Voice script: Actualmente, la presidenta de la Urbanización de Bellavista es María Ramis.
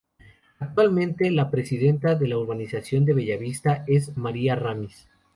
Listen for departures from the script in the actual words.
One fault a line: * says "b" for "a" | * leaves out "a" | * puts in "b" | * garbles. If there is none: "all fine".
all fine